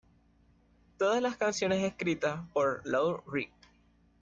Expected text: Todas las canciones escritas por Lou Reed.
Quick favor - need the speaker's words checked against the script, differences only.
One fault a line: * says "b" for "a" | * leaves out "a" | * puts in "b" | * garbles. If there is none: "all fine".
all fine